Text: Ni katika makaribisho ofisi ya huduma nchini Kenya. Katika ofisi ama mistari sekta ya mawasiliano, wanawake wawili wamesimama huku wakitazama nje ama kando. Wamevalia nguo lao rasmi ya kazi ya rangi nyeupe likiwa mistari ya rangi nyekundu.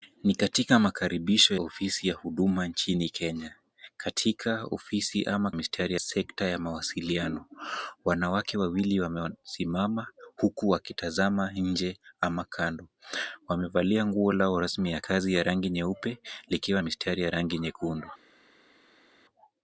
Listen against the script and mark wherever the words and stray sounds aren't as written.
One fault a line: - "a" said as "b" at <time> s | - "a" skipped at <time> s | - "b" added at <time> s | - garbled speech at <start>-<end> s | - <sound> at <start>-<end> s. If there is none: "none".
none